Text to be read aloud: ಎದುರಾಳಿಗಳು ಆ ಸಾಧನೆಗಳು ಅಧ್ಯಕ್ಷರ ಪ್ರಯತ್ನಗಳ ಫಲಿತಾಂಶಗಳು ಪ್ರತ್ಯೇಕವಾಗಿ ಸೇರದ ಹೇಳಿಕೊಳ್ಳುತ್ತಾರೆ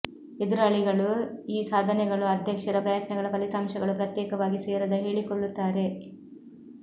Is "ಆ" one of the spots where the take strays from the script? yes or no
yes